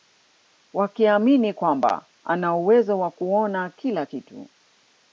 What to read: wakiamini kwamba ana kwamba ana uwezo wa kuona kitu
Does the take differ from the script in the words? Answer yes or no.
yes